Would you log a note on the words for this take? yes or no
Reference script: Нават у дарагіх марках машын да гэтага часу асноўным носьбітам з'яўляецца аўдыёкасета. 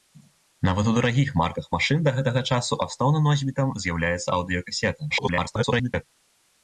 yes